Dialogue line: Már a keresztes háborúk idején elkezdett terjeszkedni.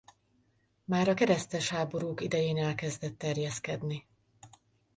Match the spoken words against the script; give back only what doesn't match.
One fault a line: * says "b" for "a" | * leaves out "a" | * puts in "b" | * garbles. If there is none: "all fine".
all fine